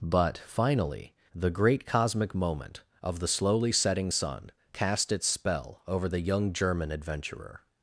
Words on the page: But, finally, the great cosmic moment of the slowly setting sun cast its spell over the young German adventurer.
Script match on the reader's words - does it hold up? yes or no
yes